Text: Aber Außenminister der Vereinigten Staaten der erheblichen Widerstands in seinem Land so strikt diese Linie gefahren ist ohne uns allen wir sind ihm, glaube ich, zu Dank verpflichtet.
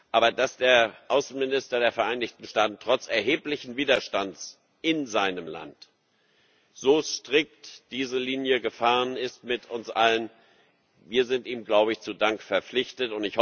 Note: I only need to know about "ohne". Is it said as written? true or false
false